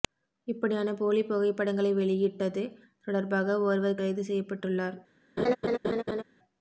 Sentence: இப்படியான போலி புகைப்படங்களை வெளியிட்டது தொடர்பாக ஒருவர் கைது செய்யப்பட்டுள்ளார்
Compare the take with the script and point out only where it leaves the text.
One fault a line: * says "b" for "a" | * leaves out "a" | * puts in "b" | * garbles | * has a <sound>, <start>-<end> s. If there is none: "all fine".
* has a laugh, 5.4-6.2 s